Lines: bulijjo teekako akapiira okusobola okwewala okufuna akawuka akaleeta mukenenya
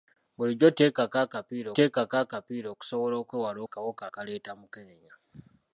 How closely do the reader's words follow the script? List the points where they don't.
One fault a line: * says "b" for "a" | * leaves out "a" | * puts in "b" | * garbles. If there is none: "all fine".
* puts in "teekako akapiira"
* leaves out "okufuna"